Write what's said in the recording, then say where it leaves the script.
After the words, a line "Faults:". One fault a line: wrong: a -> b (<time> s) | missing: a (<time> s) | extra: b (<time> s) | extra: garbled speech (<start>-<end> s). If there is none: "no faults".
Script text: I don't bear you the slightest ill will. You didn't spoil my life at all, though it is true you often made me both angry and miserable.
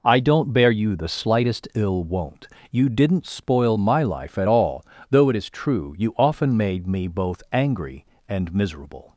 I don't bear you the slightest ill won't. You didn't spoil my life at all, though it is true you often made me both angry and miserable.
Faults:
wrong: will -> won't (2.0 s)